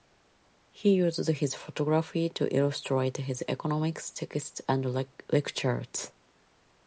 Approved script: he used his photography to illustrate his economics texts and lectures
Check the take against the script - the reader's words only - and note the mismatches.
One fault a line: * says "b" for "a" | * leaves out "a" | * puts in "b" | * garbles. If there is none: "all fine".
all fine